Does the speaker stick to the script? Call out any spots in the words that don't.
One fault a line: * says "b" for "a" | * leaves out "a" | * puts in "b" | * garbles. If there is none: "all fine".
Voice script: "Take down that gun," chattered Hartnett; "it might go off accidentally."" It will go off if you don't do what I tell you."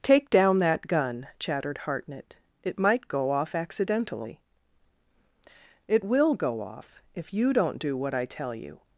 all fine